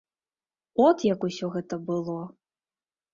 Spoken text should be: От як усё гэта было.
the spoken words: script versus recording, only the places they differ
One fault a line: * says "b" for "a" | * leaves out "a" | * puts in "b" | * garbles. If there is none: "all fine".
all fine